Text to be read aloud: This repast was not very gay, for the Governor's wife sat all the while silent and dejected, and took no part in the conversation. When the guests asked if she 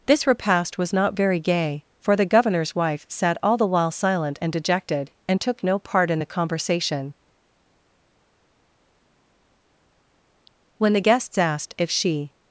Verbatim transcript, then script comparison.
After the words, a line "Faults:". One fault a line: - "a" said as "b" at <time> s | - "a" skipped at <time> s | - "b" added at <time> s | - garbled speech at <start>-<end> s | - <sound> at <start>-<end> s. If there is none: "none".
This repast was not very gay, for the Governor's wife sat all the while silent and dejected, and took no part in the conversation. When the guests asked if she
Faults:
none